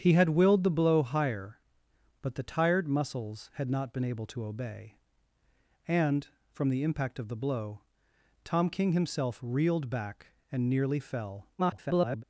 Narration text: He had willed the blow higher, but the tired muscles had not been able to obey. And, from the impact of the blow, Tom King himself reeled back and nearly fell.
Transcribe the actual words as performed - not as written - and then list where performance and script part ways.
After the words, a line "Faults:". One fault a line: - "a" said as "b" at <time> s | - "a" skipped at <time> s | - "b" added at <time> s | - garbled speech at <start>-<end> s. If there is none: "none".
He had willed the blow higher, but the tired muscles had not been able to obey. And, from the impact of the blow, Tom King himself reeled back and nearly fell. [garbled]
Faults:
- garbled speech at 11.6-12.2 s